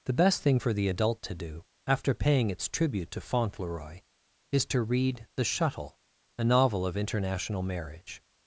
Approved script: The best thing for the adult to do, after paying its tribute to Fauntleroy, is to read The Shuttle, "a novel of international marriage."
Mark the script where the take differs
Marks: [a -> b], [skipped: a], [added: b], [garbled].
The best thing for the adult to do, after paying its tribute to Fauntleroy, is to read The Shuttle, "a novel of international marriage."